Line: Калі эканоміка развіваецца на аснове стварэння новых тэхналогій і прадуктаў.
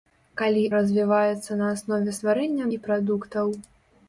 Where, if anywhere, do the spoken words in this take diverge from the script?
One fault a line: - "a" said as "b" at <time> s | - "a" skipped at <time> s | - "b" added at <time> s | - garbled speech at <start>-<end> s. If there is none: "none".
- "эканоміка" skipped at 0.6 s
- "новых тэхналогій" skipped at 2.7 s